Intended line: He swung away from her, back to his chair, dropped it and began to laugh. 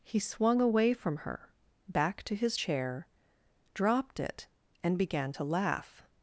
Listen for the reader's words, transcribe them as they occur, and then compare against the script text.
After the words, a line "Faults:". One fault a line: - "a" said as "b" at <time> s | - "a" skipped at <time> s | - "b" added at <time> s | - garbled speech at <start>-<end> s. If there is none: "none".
He swung away from her, back to his chair, dropped it and began to laugh.
Faults:
none